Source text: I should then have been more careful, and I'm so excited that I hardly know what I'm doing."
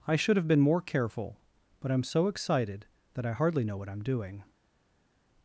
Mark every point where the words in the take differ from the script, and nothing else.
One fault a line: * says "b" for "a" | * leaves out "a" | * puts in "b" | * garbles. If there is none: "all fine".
* leaves out "then"
* says "but" for "and"